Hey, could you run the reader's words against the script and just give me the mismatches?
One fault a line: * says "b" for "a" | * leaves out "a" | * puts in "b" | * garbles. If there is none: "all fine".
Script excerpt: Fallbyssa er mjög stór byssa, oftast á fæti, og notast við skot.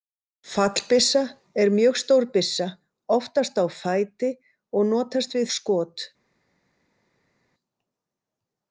all fine